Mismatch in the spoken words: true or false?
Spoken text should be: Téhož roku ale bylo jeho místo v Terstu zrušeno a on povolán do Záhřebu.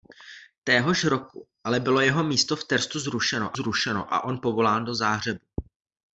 true